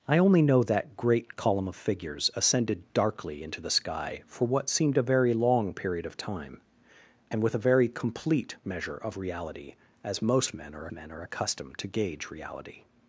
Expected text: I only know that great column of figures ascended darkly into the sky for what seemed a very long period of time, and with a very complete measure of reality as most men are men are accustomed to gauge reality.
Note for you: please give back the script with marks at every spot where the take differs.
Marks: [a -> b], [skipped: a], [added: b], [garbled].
I only know that great column of figures ascended darkly into the sky for what seemed a very long period of time, and with a very complete measure of reality as most men are men are accustomed to gauge reality.